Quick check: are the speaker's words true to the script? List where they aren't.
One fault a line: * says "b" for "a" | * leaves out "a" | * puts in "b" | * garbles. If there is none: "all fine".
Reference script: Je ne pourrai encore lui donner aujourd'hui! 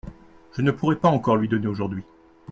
* puts in "pas"